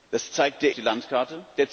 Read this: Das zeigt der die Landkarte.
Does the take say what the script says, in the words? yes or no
yes